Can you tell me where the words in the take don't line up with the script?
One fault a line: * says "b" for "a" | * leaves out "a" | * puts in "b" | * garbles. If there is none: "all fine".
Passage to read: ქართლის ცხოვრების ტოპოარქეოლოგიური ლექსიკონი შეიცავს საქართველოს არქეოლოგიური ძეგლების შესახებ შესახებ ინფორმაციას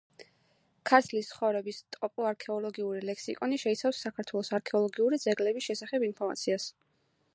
* leaves out "შესახებ"